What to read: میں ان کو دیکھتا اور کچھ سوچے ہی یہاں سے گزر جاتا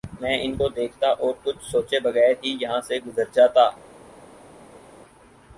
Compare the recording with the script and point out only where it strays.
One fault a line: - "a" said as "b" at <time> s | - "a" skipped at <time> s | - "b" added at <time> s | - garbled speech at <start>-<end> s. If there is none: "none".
- "بغیر" added at 2.0 s